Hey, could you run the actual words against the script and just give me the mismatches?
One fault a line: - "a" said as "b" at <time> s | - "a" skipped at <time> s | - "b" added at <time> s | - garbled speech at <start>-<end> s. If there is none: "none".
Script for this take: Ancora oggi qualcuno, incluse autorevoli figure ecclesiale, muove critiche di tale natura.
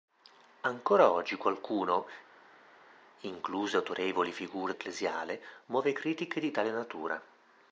none